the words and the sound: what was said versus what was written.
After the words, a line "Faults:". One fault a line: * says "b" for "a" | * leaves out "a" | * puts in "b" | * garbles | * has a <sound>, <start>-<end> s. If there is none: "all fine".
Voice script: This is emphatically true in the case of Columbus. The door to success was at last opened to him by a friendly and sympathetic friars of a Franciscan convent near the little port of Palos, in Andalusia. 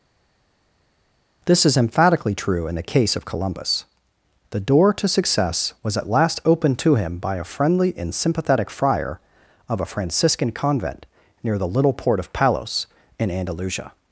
This is emphatically true in the case of Columbus. The door to success was at last opened to him by a friendly and sympathetic friar of a Franciscan convent near the little port of Palos, in Andalusia.
Faults:
* says "friar" for "friars"